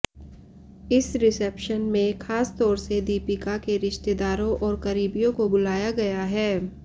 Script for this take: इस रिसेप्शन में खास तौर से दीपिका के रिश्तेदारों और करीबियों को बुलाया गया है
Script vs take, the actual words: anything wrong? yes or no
no